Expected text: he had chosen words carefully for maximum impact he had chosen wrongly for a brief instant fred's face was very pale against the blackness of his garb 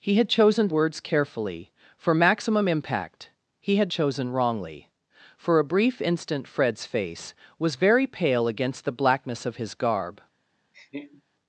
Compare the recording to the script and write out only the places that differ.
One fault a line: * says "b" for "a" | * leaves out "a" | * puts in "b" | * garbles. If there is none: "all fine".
all fine